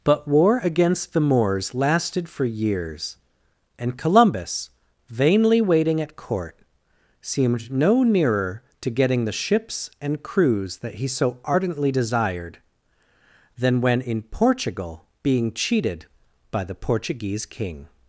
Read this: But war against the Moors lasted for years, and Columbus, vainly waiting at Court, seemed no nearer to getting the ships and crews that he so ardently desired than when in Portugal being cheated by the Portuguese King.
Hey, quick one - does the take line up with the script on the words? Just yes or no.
yes